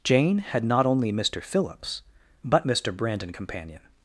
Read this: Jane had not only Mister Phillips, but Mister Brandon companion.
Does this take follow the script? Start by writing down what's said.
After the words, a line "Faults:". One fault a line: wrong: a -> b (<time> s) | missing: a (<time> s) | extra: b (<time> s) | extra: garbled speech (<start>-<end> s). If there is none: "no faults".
Jane had not only Mister Phillips, but Mister Brandon companion.
Faults:
no faults